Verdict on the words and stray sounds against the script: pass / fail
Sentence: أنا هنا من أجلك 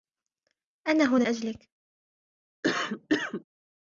fail